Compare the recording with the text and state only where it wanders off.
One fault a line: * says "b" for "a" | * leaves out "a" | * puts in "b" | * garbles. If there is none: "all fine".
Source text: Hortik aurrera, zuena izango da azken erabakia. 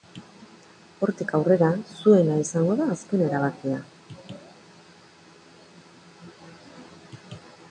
all fine